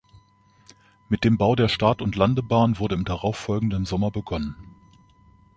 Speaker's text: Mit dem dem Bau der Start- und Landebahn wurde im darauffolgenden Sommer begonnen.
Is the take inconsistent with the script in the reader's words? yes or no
yes